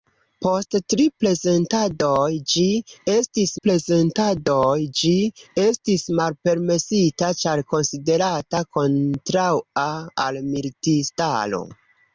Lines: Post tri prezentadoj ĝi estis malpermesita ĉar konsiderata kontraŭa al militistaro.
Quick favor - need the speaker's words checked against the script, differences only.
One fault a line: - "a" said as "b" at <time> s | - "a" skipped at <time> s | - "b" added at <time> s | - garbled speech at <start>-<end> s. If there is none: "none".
- "prezentadoj ĝi estis" added at 3.7 s